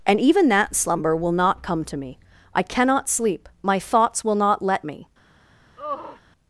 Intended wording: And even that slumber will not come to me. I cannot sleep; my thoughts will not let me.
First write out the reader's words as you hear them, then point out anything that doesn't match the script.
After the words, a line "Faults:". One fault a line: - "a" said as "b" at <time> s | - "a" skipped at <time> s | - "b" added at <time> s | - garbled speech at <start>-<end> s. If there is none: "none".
And even that slumber will not come to me. I cannot sleep; my thoughts will not let me.
Faults:
none